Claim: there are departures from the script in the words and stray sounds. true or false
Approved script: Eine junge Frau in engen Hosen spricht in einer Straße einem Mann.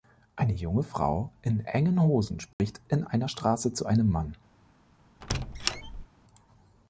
true